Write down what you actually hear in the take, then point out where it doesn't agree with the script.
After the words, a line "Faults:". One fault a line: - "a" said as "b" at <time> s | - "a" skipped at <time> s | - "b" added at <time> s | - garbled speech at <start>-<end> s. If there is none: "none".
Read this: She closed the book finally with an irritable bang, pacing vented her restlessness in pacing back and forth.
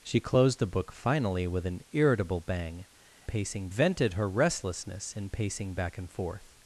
She closed the book finally with an irritable bang, pacing vented her restlessness in pacing back and forth.
Faults:
none